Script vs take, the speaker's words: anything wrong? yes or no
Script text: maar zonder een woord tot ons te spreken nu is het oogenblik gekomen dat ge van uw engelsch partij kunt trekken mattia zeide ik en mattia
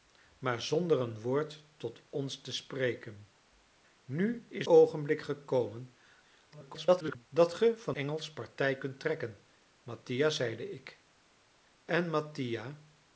yes